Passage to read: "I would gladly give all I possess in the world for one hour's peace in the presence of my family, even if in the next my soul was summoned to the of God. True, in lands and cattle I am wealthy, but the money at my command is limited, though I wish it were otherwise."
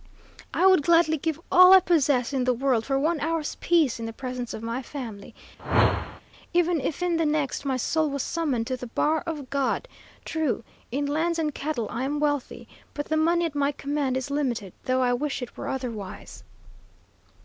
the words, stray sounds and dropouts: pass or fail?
fail